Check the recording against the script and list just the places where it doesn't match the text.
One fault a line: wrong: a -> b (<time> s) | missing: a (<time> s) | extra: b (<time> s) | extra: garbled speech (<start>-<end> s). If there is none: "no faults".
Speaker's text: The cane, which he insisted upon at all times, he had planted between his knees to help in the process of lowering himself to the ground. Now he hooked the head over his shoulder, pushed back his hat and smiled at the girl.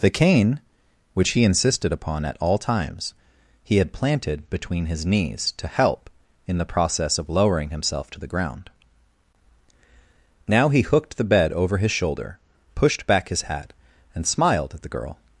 wrong: head -> bed (11.2 s)